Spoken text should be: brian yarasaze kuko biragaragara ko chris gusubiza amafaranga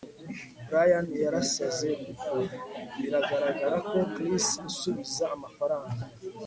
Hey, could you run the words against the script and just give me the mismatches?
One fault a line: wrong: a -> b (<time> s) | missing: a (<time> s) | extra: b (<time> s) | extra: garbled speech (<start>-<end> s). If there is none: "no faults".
no faults